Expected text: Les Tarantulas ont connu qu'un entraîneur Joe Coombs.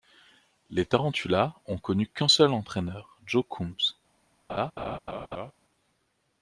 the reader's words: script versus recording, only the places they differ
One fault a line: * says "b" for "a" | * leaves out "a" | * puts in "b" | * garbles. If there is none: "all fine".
* puts in "seul"